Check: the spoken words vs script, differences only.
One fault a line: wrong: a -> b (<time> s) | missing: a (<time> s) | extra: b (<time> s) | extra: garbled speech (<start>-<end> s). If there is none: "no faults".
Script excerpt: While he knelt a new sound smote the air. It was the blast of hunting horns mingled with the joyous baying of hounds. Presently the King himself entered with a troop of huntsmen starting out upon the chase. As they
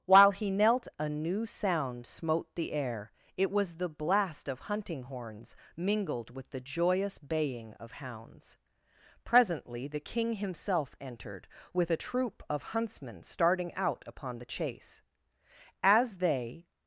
no faults